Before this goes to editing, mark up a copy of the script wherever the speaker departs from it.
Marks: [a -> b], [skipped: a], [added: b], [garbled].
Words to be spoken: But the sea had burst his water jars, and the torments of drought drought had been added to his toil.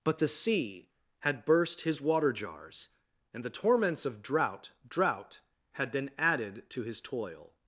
But the sea had burst his water jars, and the torments of drought drought had been added to his toil.